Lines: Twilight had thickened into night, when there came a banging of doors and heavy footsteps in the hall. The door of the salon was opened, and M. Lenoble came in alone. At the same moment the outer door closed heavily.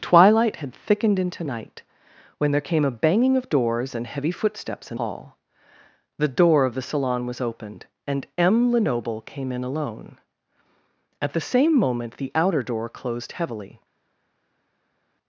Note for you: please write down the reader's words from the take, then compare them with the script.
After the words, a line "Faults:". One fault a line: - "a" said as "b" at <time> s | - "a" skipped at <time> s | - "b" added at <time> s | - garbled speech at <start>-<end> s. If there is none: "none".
Twilight had thickened into night, when there came a banging of doors and heavy footsteps in hall. The door of the salon was opened, and M. Lenoble came in alone. At the same moment the outer door closed heavily.
Faults:
- "the" skipped at 5.0 s